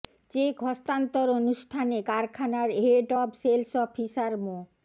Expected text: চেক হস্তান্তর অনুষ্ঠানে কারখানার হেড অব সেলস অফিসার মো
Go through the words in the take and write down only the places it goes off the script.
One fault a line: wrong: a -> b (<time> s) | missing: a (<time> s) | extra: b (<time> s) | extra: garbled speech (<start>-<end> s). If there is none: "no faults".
no faults